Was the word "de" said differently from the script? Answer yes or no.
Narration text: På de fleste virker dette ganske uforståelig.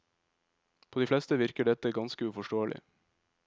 no